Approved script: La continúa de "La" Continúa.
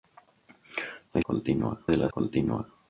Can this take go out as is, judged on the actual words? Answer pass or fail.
pass